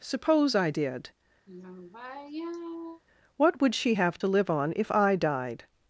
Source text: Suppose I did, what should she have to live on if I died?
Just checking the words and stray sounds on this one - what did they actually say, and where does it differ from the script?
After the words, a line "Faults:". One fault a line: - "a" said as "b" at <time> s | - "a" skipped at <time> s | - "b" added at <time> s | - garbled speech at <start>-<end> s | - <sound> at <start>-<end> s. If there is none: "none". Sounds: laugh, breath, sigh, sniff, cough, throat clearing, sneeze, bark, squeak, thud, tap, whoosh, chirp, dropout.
Suppose I did, what would she have to live on if I died?
Faults:
- sigh at 1.5-3.0 s
- "should" said as "would" at 3.6 s